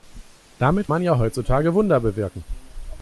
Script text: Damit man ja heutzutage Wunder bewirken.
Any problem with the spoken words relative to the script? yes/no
no